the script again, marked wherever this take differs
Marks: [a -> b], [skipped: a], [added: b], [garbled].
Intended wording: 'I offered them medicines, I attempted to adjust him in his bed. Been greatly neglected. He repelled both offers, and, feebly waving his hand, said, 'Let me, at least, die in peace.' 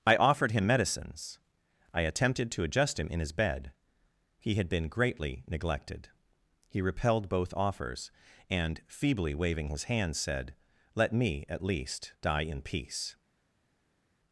'I offered [them -> him] medicines, I attempted to adjust him in his bed. [added: He had] Been greatly neglected. He repelled both offers, and, feebly waving his hand, said, 'Let me, at least, die in peace.'